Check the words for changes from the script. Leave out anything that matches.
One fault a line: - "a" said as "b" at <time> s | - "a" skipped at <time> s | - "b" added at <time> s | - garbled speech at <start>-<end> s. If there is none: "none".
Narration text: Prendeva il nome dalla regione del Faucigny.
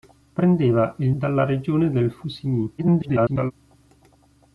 - "nome" skipped at 1.1 s
- garbled speech at 2.8-3.5 s